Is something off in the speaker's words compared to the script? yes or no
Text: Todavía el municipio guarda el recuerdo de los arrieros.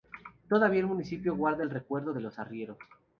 no